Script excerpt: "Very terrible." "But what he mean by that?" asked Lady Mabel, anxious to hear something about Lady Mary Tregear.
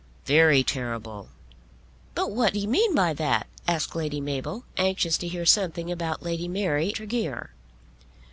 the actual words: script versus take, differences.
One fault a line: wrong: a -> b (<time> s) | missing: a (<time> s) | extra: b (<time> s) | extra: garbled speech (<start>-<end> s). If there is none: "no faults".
no faults